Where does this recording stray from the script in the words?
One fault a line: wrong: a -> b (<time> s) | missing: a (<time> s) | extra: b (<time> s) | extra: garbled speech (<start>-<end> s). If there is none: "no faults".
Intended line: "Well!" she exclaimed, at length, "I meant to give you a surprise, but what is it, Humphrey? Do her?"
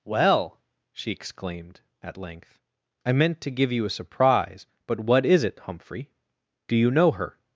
extra: you know (6.8 s)